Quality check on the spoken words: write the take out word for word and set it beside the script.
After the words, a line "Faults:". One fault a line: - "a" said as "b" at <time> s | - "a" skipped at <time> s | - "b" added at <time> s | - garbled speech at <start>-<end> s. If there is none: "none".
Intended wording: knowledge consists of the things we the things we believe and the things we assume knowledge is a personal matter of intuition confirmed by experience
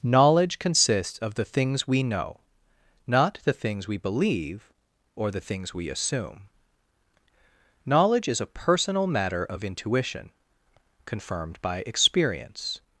knowledge consists of the things we know not the things we believe or the things we assume knowledge is a personal matter of intuition confirmed by experience
Faults:
- "know not" added at 2.0 s
- "and" said as "or" at 5.2 s